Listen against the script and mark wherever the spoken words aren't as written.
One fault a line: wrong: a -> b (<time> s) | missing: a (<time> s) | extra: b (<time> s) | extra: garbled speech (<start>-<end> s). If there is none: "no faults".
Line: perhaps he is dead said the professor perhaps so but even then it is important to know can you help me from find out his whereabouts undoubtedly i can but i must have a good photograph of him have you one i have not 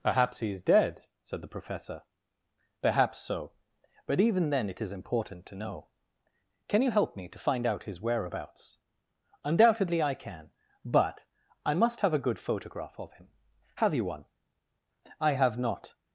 wrong: from -> to (7.3 s)